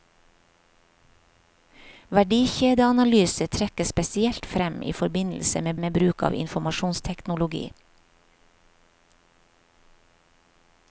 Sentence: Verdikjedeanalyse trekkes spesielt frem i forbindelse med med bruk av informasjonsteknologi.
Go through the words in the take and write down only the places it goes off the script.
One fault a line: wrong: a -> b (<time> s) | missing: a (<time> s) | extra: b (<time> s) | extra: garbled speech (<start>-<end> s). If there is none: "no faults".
no faults